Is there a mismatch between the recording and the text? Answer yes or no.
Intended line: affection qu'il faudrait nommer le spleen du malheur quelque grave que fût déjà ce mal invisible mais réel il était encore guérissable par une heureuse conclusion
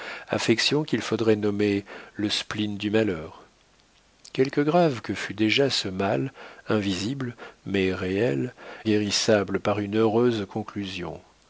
yes